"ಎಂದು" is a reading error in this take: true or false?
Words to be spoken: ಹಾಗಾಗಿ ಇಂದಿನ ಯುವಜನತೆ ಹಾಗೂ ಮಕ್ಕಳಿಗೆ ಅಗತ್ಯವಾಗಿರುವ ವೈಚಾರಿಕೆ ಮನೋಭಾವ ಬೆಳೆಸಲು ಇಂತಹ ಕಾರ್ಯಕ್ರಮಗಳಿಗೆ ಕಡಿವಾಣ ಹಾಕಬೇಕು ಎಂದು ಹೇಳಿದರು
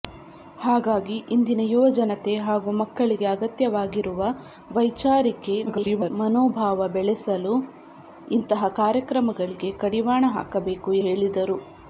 true